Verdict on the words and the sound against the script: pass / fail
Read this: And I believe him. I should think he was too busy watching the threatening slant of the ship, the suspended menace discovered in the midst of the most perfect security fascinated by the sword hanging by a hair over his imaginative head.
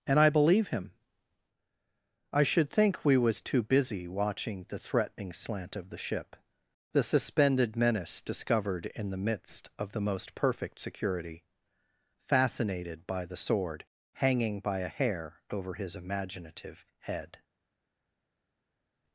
fail